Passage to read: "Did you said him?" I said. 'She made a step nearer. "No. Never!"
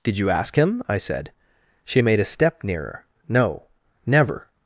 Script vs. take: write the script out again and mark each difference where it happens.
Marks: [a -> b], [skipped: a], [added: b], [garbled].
"Did you [said -> ask] him?" I said. 'She made a step nearer. "No. Never!"